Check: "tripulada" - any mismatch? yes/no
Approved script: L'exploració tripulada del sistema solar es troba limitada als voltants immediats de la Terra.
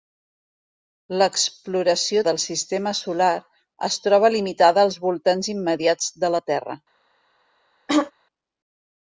yes